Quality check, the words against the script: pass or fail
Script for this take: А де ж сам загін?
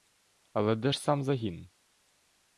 fail